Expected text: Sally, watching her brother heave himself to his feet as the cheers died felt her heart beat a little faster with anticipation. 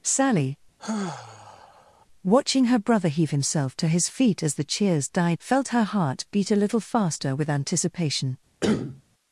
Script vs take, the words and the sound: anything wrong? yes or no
yes